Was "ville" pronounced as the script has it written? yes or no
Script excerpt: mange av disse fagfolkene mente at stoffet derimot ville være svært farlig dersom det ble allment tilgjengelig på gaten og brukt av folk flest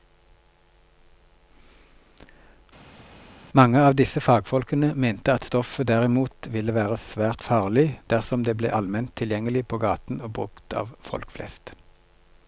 yes